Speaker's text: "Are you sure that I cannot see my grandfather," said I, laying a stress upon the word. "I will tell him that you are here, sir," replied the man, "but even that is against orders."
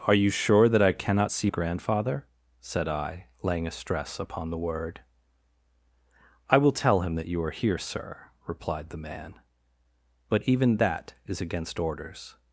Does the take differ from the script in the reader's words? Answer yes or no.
yes